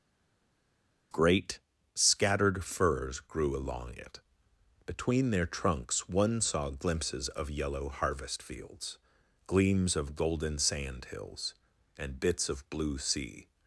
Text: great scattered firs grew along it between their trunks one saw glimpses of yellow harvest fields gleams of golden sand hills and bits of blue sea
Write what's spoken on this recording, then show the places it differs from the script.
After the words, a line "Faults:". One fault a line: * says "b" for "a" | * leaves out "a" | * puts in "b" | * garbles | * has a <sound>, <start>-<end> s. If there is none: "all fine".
great scattered firs grew along it between their trunks one saw glimpses of yellow harvest fields gleams of golden sand hills and bits of blue sea
Faults:
all fine